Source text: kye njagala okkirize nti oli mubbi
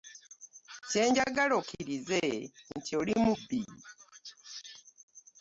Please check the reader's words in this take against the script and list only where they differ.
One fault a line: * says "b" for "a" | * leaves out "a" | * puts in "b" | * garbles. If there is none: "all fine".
all fine